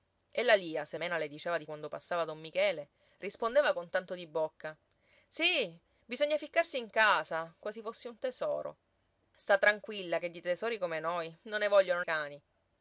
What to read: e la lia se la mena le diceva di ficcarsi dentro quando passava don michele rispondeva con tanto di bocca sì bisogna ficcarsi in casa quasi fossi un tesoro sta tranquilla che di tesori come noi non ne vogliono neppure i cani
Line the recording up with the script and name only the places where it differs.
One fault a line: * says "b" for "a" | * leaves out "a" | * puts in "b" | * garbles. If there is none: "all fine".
* leaves out "la"
* leaves out "ficcarsi dentro"
* leaves out "neppure"